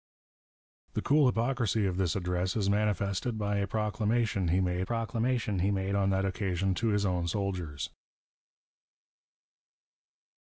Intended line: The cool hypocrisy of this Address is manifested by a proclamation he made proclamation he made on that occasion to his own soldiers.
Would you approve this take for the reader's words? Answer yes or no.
yes